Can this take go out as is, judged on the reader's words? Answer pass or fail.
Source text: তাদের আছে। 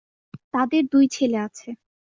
fail